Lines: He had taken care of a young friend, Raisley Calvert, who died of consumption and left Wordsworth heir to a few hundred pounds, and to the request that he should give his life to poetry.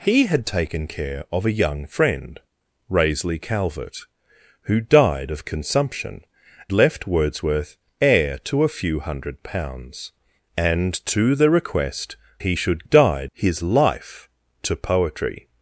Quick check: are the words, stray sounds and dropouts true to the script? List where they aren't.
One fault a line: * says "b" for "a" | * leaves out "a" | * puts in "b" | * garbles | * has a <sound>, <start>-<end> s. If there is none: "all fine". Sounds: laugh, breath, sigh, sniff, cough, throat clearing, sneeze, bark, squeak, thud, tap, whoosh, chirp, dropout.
* leaves out "and"
* leaves out "that"
* says "died" for "give"